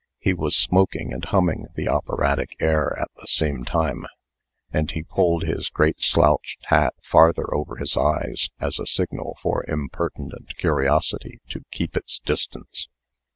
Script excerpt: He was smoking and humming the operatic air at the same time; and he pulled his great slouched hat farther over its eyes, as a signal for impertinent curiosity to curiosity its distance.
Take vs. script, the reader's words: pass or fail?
fail